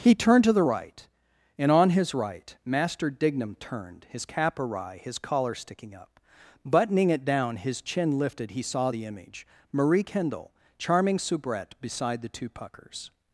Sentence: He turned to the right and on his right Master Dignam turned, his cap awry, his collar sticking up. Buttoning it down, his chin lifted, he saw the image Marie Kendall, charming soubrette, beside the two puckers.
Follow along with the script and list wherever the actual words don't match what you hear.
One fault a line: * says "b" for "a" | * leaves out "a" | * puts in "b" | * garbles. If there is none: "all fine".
all fine